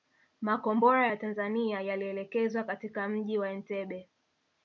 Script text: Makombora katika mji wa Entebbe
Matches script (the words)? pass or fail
fail